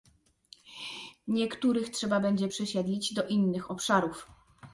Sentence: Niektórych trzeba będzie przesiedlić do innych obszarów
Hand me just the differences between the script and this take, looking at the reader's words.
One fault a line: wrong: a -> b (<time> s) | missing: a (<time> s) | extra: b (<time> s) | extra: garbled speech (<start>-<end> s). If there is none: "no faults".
no faults